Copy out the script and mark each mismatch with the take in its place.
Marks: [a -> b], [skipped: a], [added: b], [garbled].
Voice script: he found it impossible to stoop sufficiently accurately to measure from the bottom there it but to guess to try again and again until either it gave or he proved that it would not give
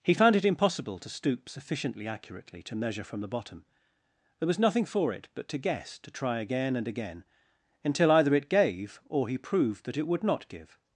he found it impossible to stoop sufficiently accurately to measure from the bottom there [added: was nothing for] it but to guess to try again and again until either it gave or he proved that it would not give